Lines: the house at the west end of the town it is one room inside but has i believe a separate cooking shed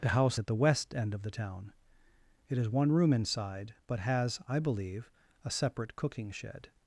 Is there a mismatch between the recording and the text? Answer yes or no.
no